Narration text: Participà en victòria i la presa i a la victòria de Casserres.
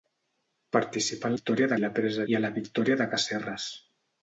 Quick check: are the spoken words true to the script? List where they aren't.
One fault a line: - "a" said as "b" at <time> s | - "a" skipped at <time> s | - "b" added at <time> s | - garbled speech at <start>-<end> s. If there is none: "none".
none